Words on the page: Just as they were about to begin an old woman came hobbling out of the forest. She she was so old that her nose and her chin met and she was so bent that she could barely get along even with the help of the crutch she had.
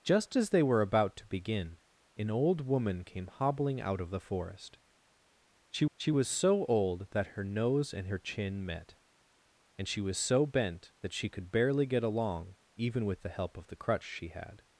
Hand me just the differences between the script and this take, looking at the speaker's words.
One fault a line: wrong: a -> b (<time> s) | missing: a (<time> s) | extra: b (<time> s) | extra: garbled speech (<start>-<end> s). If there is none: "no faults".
no faults